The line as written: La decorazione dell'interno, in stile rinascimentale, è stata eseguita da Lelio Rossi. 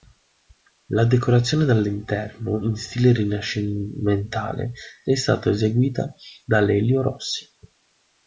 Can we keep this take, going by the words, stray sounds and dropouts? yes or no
yes